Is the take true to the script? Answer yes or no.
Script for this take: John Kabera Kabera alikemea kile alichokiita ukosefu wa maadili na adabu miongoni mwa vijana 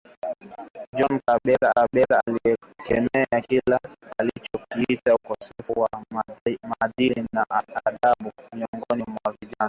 yes